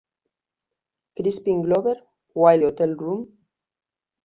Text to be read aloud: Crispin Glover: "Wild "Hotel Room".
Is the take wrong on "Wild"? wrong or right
right